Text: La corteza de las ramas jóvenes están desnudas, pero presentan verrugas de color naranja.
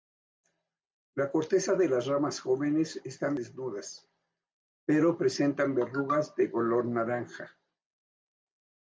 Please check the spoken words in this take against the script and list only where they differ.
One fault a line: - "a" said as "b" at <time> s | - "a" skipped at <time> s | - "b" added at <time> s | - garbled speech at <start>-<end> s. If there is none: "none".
none